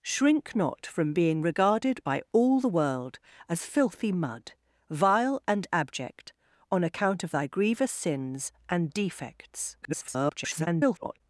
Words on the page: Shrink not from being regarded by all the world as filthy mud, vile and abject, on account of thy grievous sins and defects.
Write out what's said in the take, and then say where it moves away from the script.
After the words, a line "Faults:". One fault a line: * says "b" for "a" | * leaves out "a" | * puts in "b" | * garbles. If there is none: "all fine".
Shrink not from being regarded by all the world as filthy mud, vile and abject, on account of thy grievous sins and defects. [garbled]
Faults:
* garbles